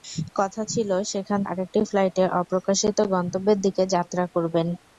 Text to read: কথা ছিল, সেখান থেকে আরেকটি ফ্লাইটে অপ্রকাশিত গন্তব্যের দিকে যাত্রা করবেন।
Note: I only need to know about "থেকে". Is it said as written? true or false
false